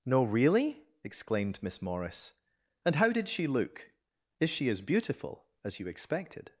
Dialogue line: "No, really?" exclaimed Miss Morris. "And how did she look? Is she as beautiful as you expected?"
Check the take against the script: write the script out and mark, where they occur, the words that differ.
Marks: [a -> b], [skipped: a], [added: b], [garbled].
"No, really?" exclaimed Miss Morris. "And how did she look? Is she as beautiful as you expected?"